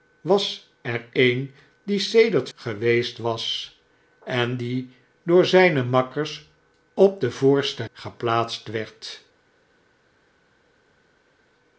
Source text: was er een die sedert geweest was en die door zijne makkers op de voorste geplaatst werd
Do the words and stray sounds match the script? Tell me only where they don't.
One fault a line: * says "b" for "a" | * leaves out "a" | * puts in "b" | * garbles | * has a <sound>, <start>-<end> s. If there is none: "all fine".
all fine